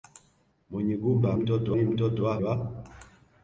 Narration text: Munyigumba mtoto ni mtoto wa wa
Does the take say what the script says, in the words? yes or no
yes